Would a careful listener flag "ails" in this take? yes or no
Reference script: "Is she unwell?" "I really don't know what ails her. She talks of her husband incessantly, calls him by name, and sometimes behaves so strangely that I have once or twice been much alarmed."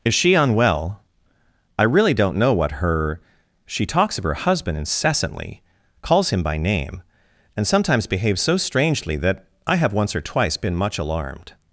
yes